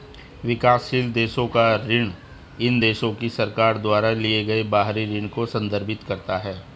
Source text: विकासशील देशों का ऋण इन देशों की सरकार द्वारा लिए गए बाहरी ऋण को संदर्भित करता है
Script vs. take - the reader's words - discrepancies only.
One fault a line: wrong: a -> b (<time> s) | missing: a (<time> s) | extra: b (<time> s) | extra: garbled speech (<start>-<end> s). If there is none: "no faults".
no faults